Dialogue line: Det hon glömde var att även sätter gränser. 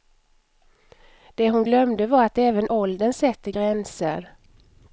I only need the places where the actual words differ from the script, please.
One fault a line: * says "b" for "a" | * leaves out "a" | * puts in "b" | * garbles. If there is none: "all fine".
* puts in "åldern"